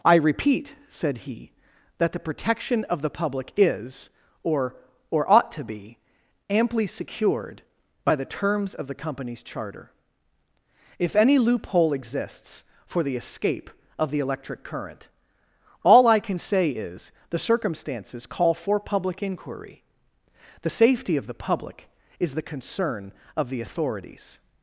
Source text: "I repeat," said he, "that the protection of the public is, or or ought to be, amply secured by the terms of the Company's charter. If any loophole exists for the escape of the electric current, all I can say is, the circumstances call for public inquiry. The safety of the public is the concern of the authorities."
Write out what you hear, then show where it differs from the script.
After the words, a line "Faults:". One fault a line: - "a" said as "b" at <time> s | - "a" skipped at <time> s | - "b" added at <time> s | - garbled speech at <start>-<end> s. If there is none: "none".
"I repeat," said he, "that the protection of the public is, or or ought to be, amply secured by the terms of the Company's charter. If any loophole exists for the escape of the electric current, all I can say is, the circumstances call for public inquiry. The safety of the public is the concern of the authorities."
Faults:
none